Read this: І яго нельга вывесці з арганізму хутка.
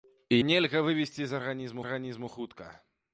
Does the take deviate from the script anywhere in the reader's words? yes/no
yes